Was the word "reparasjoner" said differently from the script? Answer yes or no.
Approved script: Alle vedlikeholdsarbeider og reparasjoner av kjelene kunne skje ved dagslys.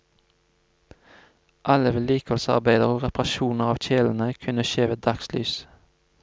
no